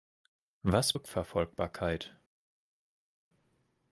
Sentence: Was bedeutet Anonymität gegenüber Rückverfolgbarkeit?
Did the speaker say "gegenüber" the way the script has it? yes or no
no